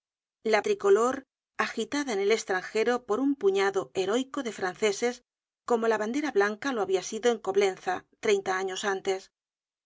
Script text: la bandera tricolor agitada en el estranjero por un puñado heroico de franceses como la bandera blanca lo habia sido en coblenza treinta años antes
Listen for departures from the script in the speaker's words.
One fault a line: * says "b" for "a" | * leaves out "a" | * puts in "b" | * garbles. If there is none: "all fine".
* leaves out "bandera"